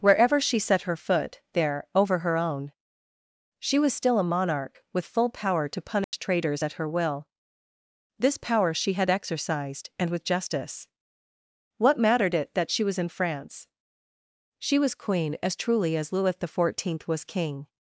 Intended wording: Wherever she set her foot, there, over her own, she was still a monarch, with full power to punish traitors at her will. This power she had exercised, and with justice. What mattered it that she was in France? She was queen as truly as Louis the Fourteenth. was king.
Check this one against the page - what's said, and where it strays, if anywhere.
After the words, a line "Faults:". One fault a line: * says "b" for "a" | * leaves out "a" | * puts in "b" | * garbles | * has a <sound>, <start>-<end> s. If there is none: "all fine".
Wherever she set her foot, there, over her own, she was still a monarch, with full power to punish traitors at her will. This power she had exercised, and with justice. What mattered it that she was in France? She was queen as truly as Louis the Fourteenth. was king.
Faults:
* has a dropout, 6.0-6.1 s